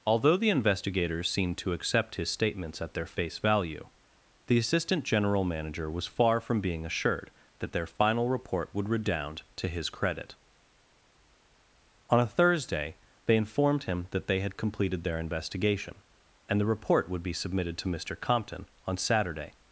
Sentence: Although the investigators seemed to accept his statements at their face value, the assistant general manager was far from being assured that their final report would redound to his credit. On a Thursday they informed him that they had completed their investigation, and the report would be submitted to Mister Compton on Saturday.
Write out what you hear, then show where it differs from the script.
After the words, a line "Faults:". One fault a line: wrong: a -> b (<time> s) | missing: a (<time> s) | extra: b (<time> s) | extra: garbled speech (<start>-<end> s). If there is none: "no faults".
Although the investigators seemed to accept his statements at their face value, the assistant general manager was far from being assured that their final report would redound to his credit. On a Thursday they informed him that they had completed their investigation, and the report would be submitted to Mister Compton on Saturday.
Faults:
no faults